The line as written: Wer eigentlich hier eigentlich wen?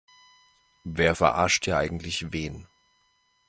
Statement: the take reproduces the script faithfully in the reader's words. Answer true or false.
false